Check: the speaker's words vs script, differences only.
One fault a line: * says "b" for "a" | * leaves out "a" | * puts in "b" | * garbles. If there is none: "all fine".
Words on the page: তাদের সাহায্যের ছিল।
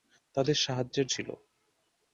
all fine